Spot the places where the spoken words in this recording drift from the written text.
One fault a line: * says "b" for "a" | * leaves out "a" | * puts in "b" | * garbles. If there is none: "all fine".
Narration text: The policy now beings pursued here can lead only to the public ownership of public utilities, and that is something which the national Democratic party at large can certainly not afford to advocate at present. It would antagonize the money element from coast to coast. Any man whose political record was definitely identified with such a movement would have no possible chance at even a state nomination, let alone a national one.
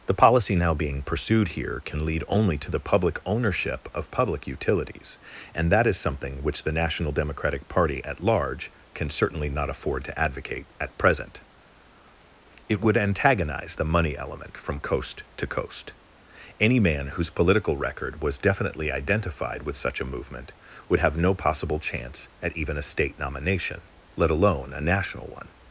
* says "being" for "beings"